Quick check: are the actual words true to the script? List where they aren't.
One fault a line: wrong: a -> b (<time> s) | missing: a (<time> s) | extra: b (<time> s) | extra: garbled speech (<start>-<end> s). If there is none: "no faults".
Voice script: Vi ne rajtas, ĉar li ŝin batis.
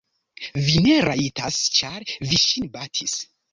wrong: li -> vi (2.3 s)